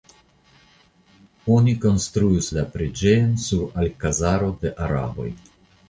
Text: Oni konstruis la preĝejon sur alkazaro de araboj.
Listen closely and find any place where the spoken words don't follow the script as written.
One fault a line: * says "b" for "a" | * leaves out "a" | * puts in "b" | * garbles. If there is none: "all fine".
all fine